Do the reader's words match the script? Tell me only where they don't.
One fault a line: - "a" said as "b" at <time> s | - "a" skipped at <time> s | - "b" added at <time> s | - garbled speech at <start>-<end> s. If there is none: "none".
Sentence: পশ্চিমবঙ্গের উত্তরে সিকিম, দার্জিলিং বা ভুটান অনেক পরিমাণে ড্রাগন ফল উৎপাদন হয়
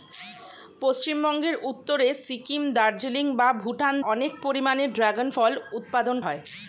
none